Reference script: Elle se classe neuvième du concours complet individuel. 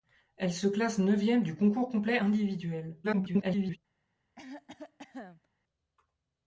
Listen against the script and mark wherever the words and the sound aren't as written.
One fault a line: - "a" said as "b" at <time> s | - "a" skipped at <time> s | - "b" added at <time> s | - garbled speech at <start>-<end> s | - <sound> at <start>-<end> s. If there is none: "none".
- garbled speech at 3.0-3.8 s
- cough at 4.3-5.5 s